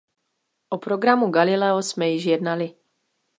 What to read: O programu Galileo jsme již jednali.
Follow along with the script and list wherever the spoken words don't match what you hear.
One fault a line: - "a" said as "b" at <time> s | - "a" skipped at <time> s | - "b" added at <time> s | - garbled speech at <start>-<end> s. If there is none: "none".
none